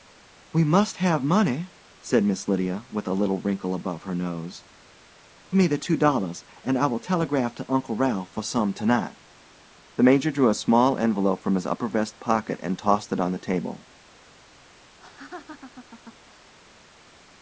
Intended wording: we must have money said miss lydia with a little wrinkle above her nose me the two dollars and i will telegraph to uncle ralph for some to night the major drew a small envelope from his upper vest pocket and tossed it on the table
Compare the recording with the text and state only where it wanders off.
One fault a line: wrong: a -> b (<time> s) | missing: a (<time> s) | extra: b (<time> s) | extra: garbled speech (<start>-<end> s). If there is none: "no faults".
no faults